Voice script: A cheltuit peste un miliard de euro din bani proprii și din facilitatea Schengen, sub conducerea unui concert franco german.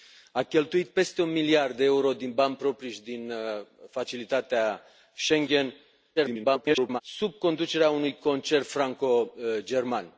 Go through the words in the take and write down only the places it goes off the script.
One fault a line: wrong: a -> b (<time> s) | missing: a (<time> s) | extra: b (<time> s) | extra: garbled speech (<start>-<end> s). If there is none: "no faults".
extra: garbled speech (6.2-7.0 s)